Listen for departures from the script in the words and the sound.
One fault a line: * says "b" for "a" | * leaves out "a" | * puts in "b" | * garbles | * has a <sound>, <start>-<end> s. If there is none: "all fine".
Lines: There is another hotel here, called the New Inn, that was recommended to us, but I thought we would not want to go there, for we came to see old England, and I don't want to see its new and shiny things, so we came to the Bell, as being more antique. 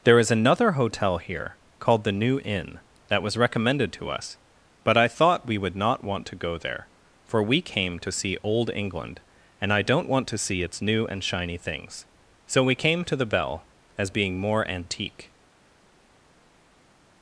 all fine